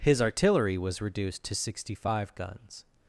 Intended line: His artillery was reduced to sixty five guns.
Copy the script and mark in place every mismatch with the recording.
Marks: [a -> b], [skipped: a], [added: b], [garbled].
His artillery was reduced to sixty five guns.